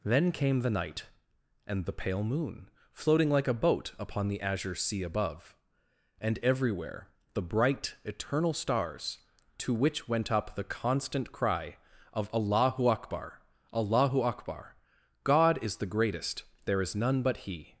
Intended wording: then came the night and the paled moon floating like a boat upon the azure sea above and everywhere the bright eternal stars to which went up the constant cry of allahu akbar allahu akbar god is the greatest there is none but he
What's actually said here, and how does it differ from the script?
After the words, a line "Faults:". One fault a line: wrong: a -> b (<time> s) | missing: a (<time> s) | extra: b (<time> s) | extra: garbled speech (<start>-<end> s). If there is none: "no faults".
then came the night and the pale moon floating like a boat upon the azure sea above and everywhere the bright eternal stars to which went up the constant cry of allahu akbar allahu akbar god is the greatest there is none but he
Faults:
wrong: paled -> pale (1.9 s)